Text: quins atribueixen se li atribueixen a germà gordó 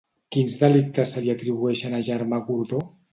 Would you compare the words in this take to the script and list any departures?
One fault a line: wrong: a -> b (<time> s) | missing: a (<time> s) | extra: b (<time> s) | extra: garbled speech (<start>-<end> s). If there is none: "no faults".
wrong: atribueixen -> delictes (0.6 s)